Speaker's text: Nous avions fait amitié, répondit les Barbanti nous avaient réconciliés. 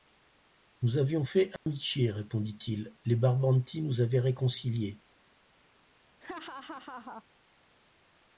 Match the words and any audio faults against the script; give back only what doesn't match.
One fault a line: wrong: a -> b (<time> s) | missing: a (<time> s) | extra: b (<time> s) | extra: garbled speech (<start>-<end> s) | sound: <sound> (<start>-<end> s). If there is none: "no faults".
sound: dropout (1.6-1.7 s)
extra: il (2.7 s)
sound: laugh (6.2-7.2 s)